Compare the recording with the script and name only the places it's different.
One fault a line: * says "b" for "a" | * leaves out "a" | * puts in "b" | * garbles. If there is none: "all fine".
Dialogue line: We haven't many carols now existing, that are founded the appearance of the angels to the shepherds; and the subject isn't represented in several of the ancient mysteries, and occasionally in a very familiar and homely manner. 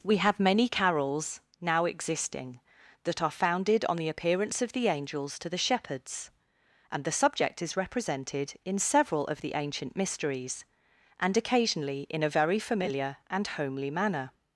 * says "have" for "haven't"
* puts in "on"
* says "is" for "isn't"